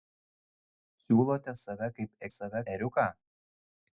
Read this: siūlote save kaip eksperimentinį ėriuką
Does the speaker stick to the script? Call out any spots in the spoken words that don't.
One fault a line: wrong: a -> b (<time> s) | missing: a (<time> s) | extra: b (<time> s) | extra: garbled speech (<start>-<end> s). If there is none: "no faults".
wrong: eksperimentinį -> save (2.4 s)